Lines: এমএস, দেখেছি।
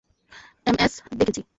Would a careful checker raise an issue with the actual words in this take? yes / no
no